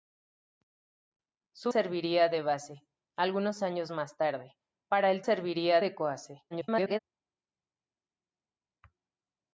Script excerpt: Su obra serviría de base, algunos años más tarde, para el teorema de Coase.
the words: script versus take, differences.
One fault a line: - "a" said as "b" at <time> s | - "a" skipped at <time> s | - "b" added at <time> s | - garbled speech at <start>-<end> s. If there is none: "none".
- "obra" skipped at 1.7 s
- "teorema" said as "serviría" at 5.2 s
- garbled speech at 6.5-7.0 s